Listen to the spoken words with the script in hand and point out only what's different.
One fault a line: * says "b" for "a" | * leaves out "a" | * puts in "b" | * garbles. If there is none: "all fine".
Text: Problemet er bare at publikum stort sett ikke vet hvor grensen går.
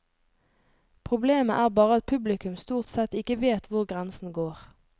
all fine